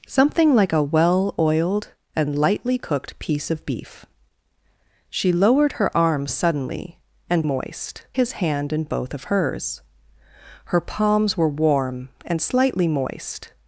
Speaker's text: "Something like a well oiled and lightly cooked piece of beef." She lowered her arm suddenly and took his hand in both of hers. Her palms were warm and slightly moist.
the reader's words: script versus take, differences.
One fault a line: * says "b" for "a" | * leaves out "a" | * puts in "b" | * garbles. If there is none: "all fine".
* says "moist" for "took"